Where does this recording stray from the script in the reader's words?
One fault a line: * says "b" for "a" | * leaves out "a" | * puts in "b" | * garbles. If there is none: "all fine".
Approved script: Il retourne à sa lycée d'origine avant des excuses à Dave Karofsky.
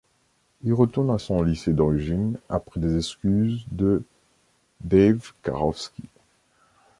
* says "son" for "sa"
* says "après" for "avant"
* says "de" for "à"